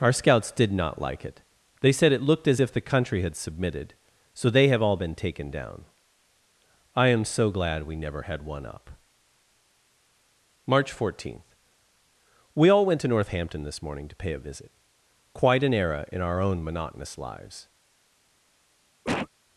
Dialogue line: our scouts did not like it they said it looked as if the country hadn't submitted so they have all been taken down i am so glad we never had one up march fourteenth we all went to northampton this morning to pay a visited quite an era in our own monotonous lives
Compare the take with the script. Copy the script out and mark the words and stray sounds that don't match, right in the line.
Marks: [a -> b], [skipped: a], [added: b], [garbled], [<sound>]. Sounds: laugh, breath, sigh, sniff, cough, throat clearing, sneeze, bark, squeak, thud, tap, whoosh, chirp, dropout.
our scouts did not like it they said it looked as if the country [hadn't -> had] submitted so they have all been taken down i am so glad we never had one up march fourteenth we all went to northampton this morning to pay a [visited -> visit] quite an era in our own monotonous lives [cough]